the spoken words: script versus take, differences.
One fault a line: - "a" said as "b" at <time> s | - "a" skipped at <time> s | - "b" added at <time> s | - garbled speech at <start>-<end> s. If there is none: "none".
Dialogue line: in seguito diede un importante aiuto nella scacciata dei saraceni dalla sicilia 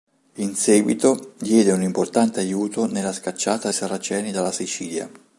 - "dei" skipped at 3.7 s